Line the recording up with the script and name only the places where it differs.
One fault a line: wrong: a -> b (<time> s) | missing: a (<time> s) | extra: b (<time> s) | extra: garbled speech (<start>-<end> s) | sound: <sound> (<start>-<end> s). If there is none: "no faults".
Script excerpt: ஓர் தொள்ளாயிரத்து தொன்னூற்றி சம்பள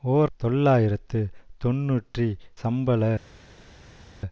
no faults